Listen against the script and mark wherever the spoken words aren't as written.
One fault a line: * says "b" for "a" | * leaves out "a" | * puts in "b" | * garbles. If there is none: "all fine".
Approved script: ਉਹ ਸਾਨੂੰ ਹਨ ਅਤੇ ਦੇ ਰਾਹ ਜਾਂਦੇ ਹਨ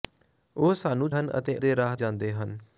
all fine